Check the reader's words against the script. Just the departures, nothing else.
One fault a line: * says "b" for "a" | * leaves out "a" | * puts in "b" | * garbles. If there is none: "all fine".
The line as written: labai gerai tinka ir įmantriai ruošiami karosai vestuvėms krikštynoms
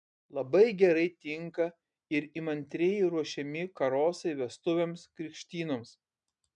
all fine